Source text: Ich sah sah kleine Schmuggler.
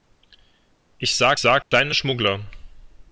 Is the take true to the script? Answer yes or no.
yes